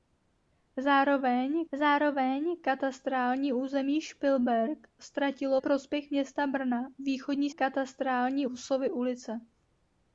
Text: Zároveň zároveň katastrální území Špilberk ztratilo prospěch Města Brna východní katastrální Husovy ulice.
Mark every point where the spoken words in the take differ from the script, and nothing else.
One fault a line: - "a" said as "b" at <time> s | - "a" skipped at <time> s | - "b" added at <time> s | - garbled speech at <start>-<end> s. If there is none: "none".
none